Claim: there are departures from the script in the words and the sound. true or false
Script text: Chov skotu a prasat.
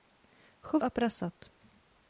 true